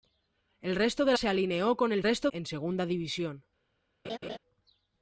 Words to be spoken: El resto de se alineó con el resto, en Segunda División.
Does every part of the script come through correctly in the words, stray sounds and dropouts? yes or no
no